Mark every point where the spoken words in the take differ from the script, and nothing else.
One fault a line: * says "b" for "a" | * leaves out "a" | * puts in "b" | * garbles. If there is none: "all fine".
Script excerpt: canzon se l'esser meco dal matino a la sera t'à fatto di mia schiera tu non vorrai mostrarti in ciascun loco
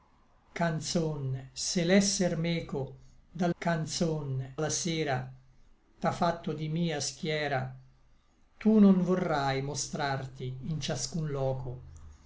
* says "canzon" for "matino"